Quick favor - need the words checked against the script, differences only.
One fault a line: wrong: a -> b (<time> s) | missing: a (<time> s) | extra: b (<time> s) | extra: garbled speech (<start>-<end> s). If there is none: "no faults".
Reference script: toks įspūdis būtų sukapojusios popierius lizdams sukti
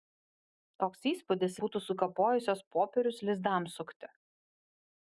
no faults